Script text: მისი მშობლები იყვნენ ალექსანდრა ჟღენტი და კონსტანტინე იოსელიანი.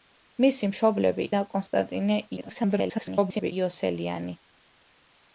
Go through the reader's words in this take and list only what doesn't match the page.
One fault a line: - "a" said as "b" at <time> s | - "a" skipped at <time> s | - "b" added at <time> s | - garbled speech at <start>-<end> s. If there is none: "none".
- "იყვნენ ალექსანდრა ჟღენტი" skipped at 1.3 s
- garbled speech at 2.4-3.5 s